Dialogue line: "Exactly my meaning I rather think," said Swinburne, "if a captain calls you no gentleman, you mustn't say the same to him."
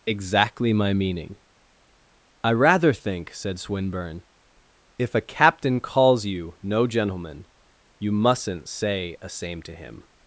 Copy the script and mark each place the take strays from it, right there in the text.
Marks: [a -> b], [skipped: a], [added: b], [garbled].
"Exactly my meaning I rather think," said Swinburne, "if a captain calls you no gentleman, you mustn't say [the -> a] same to him."